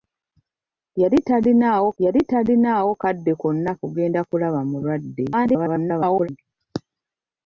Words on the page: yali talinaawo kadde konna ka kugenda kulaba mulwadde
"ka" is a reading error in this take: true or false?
true